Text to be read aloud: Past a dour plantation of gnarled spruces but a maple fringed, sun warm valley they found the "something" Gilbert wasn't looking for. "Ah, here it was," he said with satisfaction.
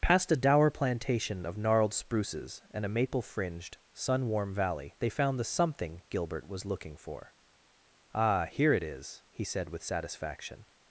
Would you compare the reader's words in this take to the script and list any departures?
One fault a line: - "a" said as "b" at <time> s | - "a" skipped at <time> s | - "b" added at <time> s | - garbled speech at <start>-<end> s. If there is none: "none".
- "but" said as "and" at 2.7 s
- "wasn't" said as "was" at 6.5 s
- "was" said as "is" at 8.8 s